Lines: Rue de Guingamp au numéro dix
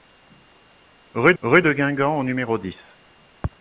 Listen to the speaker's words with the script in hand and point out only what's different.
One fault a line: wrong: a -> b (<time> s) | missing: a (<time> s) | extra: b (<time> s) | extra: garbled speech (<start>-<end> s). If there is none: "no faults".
extra: rue (1.4 s)